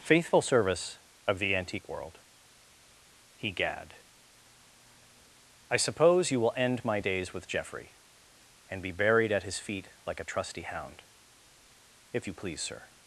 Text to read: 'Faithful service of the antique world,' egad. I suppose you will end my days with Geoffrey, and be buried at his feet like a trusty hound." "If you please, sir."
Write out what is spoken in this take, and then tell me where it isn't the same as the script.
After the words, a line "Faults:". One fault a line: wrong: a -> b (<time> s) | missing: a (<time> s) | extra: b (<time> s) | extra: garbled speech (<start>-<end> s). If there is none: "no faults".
'Faithful service of the antique world,' egad. I suppose you will end my days with Geoffrey, and be buried at his feet like a trusty hound." "If you please, sir."
Faults:
no faults